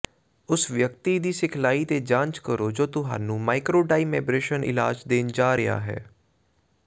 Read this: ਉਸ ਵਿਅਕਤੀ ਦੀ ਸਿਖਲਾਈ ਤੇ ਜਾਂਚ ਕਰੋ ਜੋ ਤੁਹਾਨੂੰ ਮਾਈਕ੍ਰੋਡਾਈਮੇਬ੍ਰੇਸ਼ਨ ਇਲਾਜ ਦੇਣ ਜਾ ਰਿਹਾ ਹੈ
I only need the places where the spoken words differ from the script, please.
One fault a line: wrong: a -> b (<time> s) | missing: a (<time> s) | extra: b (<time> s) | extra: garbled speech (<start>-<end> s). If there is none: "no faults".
no faults